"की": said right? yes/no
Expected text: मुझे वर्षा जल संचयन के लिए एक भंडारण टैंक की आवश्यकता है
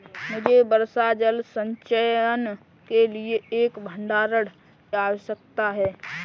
no